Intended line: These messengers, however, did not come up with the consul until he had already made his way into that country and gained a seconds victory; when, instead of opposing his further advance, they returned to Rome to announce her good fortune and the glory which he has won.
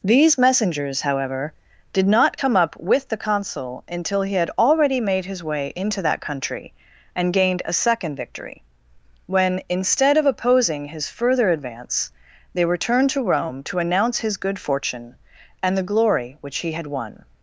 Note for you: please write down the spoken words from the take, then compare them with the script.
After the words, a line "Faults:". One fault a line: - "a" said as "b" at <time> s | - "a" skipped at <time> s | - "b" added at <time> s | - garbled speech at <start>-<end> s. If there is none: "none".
These messengers, however, did not come up with the consul until he had already made his way into that country and gained a second victory; when, instead of opposing his further advance, they returned to Rome to announce his good fortune and the glory which he had won.
Faults:
- "seconds" said as "second" at 7.7 s
- "her" said as "his" at 14.2 s
- "has" said as "had" at 16.7 s